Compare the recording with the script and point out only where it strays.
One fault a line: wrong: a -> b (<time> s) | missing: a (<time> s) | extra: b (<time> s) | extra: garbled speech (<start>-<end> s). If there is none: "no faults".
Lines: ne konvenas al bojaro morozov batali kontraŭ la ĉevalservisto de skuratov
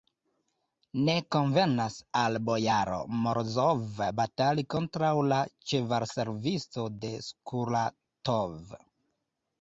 no faults